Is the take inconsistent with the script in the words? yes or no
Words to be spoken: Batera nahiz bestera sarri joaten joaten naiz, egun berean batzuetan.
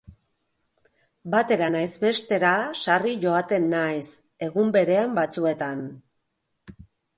yes